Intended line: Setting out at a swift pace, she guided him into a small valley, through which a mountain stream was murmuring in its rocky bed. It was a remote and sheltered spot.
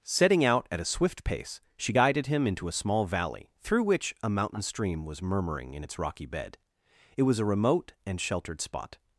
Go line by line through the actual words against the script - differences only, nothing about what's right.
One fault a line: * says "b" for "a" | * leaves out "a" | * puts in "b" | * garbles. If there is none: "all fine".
all fine